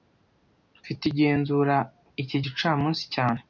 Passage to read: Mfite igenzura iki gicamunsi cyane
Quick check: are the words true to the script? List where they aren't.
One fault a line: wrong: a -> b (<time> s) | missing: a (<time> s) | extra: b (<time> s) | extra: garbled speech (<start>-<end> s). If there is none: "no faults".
no faults